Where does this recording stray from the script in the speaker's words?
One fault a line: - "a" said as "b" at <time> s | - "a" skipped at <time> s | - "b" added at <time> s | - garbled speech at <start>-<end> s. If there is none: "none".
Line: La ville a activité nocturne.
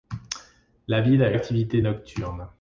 none